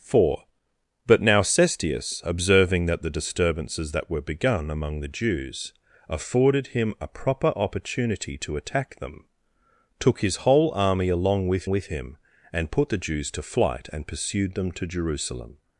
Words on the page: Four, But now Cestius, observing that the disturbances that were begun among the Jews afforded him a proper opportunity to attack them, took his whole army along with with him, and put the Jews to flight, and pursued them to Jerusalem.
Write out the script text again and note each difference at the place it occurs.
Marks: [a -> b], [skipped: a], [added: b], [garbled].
Four, But now Cestius, observing that the disturbances that were begun among the Jews afforded him a proper opportunity to attack them, took his whole army along with with him, and put the Jews to flight, and pursued them to Jerusalem.